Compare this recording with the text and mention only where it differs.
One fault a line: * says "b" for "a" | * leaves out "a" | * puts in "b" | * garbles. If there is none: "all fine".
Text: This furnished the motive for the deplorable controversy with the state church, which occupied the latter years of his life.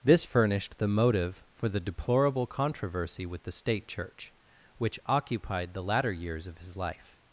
all fine